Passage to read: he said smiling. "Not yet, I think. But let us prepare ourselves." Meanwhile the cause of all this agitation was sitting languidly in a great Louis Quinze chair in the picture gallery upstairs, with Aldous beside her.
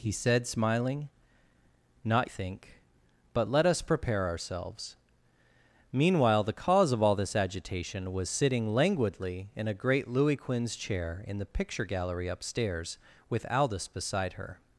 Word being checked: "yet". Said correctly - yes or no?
no